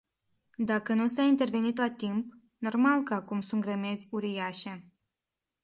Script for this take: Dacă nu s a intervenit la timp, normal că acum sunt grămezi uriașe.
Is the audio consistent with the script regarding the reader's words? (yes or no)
yes